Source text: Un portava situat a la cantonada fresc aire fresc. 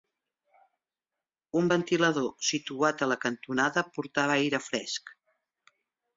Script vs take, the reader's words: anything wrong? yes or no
yes